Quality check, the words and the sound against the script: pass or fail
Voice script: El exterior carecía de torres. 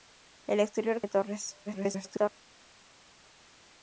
fail